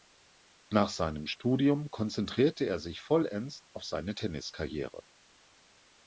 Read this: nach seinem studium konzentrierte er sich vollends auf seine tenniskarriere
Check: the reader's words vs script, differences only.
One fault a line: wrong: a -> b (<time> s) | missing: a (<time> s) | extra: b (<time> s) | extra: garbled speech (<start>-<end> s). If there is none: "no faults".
no faults